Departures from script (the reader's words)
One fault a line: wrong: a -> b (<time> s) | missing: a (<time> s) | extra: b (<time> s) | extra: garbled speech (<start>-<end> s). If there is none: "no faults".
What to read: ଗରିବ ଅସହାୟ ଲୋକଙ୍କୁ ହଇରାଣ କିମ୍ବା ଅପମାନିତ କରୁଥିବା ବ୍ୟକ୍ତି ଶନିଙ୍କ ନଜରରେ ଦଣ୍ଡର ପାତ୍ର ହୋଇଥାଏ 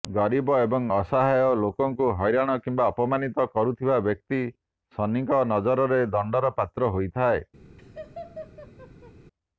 extra: ଏବଂ (0.6 s)